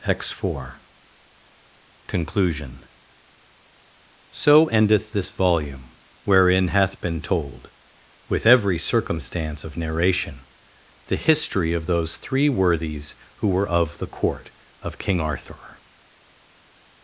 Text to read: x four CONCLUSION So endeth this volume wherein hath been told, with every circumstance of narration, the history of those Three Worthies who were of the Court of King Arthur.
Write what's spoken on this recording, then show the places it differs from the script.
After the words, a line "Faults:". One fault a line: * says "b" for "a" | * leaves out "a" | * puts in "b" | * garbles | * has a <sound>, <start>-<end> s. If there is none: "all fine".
x four CONCLUSION So endeth this volume wherein hath been told, with every circumstance of narration, the history of those Three Worthies who were of the Court of King Arthur.
Faults:
all fine